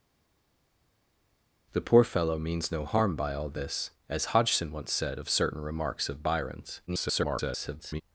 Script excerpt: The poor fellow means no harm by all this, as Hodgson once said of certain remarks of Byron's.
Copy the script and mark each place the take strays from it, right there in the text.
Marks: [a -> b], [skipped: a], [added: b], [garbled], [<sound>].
The poor fellow means no harm by all this, as Hodgson once said of certain remarks of Byron's. [garbled]